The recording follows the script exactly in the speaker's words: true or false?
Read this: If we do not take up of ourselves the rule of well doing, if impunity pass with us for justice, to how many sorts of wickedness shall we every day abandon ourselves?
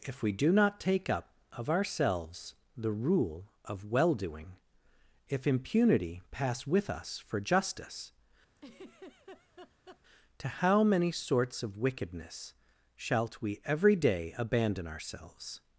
false